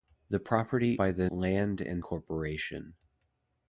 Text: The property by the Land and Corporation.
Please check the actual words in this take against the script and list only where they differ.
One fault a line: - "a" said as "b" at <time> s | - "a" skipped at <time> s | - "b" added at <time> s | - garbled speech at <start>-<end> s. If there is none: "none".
none